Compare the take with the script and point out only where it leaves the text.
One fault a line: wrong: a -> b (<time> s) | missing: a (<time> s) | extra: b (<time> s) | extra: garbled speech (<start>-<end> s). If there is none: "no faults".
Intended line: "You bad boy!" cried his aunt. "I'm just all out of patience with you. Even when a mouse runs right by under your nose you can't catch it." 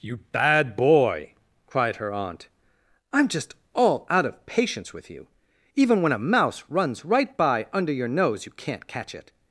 wrong: his -> her (2.0 s)